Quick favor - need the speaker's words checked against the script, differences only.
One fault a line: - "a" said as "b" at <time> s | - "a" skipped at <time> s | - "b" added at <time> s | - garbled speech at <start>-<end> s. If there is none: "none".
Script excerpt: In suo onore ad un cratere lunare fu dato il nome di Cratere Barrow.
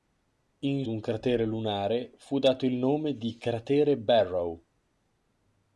- "suo onore ad" skipped at 0.9 s